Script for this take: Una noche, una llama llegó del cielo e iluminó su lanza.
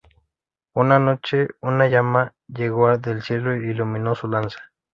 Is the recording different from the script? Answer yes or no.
no